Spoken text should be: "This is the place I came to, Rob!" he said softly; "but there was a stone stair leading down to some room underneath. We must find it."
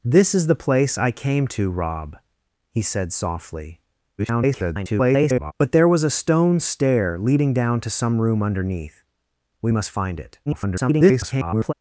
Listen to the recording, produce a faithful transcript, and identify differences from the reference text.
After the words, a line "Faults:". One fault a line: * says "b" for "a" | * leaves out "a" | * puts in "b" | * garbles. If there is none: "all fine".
"This is the place I came to, Rob!" he said softly; [garbled] "but there was a stone stair leading down to some room underneath. We must find it." [garbled]
Faults:
* garbles
* garbles